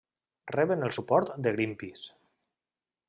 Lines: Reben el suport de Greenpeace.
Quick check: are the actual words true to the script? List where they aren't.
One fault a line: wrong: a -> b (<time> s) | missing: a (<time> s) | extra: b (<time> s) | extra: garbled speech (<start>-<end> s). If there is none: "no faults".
no faults